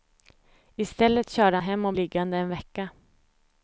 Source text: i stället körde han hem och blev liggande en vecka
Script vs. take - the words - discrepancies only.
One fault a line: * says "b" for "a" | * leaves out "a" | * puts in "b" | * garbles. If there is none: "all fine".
* leaves out "han"
* leaves out "blev"